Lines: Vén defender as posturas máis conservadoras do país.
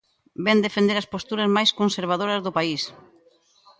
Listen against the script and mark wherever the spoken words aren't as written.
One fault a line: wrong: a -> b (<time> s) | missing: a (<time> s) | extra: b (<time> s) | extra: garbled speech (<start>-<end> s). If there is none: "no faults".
no faults